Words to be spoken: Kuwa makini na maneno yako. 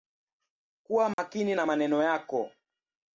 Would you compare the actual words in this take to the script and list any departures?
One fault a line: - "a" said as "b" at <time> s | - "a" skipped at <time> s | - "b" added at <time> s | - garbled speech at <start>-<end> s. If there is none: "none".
none